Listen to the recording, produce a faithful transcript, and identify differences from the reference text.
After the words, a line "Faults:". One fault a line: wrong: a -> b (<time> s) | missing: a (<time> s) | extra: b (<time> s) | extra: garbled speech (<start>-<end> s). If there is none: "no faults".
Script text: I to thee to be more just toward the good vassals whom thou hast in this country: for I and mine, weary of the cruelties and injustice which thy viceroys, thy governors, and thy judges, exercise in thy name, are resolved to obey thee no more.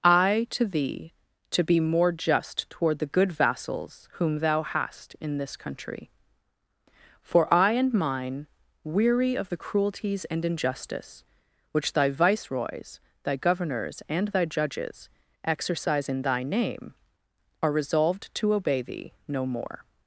I to thee to be more just toward the good vassals whom thou hast in this country: for I and mine, weary of the cruelties and injustice which thy viceroys, thy governors, and thy judges, exercise in thy name, are resolved to obey thee no more.
Faults:
no faults